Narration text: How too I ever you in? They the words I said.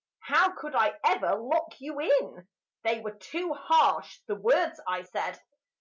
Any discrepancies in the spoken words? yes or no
yes